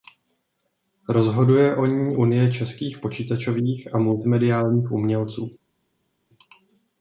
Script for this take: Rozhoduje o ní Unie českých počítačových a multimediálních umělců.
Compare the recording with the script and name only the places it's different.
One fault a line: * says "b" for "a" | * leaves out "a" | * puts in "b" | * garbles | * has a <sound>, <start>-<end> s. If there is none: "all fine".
all fine